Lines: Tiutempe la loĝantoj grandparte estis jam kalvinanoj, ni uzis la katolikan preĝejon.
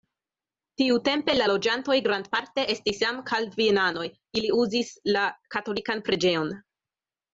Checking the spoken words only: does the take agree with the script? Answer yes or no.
no